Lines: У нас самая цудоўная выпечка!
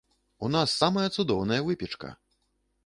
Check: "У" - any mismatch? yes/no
no